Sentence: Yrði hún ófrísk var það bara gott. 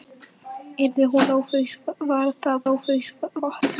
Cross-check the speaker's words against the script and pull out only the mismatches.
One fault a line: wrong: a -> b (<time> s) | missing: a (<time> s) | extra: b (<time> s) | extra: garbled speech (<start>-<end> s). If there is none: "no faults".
wrong: bara -> ófrísk (2.7 s)